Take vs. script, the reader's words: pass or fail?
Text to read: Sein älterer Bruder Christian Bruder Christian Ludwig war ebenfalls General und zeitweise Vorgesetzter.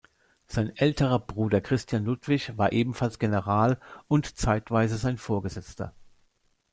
fail